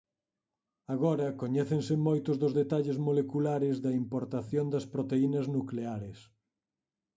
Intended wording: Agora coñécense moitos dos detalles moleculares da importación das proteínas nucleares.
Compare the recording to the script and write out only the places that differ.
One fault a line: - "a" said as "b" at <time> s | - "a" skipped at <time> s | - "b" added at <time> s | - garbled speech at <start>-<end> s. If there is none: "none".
none